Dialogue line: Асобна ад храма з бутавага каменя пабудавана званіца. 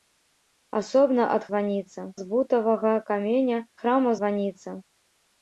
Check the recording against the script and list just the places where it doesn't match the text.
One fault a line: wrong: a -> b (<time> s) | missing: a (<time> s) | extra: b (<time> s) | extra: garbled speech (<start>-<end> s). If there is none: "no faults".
wrong: храма -> званіца (1.5 s)
wrong: пабудавана -> храма (3.8 s)